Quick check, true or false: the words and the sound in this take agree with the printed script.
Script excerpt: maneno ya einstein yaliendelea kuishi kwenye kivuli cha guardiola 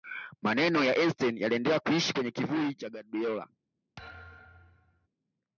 false